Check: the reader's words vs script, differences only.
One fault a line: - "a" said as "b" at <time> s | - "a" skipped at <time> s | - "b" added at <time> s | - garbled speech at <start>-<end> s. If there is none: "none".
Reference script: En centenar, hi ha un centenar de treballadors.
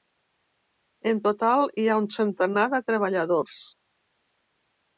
- "centenar" said as "total" at 1.2 s